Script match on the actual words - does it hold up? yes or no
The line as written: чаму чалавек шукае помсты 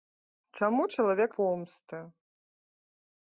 no